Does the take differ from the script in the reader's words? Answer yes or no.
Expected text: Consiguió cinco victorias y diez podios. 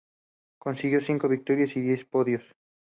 no